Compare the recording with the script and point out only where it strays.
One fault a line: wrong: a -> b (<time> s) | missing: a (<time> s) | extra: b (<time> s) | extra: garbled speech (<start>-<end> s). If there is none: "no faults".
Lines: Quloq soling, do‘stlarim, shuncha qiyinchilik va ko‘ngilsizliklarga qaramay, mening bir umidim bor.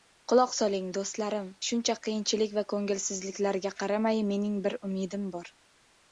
no faults